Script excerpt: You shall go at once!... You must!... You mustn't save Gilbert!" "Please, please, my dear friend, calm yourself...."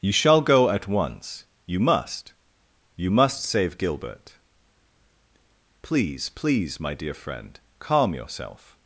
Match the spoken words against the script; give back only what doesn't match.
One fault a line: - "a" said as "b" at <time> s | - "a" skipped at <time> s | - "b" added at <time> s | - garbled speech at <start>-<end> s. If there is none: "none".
- "mustn't" said as "must" at 3.1 s